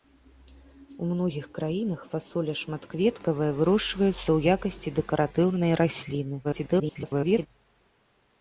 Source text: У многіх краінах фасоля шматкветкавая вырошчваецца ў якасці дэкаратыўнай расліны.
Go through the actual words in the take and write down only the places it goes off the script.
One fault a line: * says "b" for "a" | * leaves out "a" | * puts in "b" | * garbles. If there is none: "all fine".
* garbles